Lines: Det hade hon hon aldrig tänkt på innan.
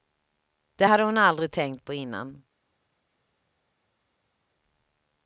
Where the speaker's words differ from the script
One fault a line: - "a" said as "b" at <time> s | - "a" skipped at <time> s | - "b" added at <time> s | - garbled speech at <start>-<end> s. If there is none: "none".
- "hon" skipped at 1.2 s